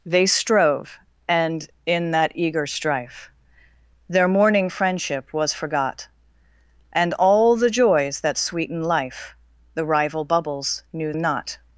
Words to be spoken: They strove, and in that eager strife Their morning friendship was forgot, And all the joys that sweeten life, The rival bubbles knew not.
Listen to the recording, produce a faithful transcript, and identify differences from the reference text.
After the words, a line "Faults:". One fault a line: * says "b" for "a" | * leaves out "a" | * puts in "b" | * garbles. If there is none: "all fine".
They strove, and in that eager strife Their morning friendship was forgot, And all the joys that sweeten life, The rival bubbles knew not.
Faults:
all fine